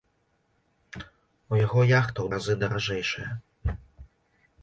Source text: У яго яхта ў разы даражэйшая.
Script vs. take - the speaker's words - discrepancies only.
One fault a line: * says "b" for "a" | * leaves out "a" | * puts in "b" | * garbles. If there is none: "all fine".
all fine